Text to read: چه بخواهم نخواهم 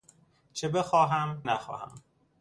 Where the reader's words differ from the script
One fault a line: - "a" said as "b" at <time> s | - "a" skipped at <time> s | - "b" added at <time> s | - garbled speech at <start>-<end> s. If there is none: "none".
none